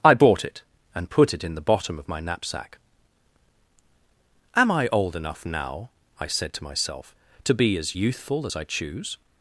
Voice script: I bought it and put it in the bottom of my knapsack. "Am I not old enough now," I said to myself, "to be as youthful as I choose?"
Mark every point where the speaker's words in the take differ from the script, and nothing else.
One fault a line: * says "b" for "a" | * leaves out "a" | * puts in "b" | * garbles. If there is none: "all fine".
* leaves out "not"